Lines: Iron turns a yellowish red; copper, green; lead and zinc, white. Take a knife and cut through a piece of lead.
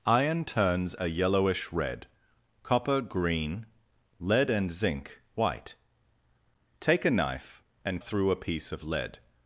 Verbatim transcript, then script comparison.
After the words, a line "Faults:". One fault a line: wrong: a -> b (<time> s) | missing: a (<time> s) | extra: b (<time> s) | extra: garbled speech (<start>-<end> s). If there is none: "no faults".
Iron turns a yellowish red; copper, green; lead and zinc, white. Take a knife and through a piece of lead.
Faults:
missing: cut (8.0 s)